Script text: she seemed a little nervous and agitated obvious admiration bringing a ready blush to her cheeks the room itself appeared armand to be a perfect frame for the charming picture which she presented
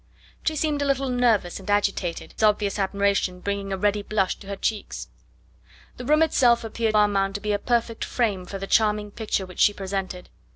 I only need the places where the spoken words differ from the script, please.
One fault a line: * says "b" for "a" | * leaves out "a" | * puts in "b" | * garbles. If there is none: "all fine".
all fine